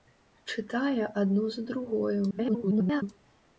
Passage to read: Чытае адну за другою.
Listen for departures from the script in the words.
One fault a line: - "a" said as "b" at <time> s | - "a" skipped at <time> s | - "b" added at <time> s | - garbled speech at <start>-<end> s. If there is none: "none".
- garbled speech at 2.3-3.0 s